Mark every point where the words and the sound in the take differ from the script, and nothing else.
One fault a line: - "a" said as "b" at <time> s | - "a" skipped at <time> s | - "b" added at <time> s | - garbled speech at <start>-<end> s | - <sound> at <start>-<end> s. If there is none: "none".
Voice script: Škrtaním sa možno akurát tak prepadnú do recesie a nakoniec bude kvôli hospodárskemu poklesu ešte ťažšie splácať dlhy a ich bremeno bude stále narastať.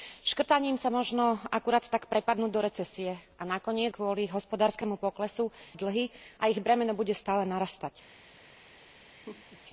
- "bude" skipped at 3.9 s
- "ešte ťažšie splácať" skipped at 5.5 s
- laugh at 9.1-9.6 s